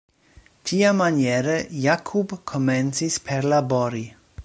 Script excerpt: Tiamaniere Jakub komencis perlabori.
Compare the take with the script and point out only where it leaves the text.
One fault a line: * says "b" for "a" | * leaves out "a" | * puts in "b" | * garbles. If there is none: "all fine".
all fine